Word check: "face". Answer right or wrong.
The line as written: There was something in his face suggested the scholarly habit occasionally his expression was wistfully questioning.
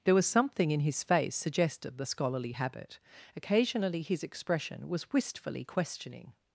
right